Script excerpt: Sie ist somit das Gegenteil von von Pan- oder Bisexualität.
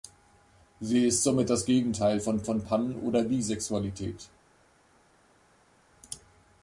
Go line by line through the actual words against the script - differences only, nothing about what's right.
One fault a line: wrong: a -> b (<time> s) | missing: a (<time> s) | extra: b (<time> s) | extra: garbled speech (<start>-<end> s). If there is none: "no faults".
no faults